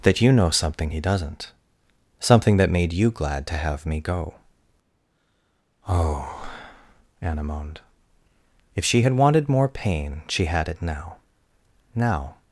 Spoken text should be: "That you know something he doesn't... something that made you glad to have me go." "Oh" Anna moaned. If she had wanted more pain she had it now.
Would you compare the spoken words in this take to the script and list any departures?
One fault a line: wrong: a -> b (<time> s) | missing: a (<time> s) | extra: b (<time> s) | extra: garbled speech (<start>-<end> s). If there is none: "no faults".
extra: now (12.0 s)